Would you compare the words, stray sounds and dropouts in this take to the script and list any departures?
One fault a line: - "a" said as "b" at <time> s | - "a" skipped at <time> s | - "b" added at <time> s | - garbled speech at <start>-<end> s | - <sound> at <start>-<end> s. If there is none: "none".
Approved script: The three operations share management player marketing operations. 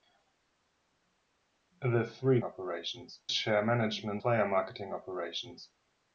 none